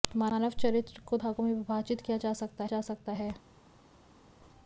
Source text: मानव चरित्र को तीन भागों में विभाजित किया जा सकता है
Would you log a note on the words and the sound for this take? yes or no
yes